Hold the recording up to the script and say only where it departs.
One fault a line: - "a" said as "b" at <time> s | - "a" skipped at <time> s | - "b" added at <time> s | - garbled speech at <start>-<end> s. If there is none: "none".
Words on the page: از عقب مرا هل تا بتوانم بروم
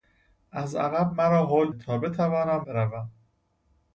none